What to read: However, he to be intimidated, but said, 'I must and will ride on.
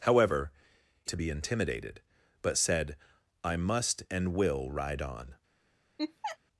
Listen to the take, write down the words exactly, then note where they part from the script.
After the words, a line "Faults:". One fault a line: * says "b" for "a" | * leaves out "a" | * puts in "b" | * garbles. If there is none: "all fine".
However, he to be intimidated, but said, 'I must and will ride on.
Faults:
all fine